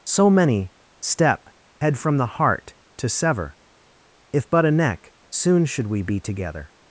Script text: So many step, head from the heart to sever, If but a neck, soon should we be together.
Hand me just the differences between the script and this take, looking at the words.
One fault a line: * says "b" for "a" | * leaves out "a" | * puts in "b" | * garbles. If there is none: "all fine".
all fine